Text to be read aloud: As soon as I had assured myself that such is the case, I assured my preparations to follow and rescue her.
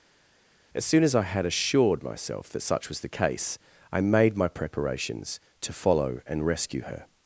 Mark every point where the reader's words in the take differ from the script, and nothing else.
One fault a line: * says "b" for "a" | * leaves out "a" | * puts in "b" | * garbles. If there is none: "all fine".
* says "was" for "is"
* says "made" for "assured"